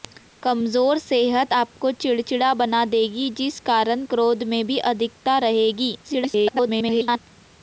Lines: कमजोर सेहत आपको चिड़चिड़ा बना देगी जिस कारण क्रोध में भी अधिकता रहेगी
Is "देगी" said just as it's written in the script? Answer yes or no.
yes